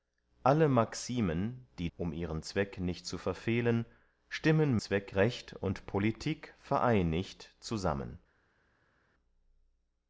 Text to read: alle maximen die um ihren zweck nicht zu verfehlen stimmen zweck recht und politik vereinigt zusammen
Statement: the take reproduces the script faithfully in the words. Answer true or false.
true